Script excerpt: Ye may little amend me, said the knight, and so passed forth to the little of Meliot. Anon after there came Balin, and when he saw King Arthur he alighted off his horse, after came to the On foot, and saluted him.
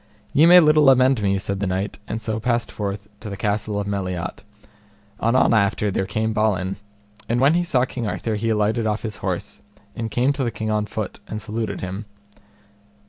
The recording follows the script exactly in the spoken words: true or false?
false